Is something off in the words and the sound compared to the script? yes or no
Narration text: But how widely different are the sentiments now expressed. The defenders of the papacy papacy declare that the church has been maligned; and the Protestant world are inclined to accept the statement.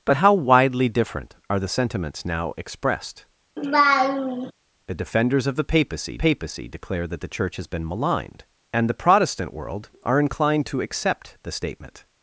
yes